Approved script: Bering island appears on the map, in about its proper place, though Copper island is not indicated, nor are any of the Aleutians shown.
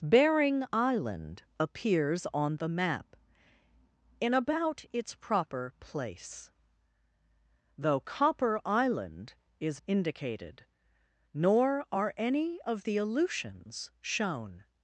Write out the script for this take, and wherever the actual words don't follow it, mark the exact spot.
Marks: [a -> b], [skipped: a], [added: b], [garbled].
Bering island appears on the map, in about its proper place, though Copper island is [skipped: not] indicated, nor are any of the Aleutians shown.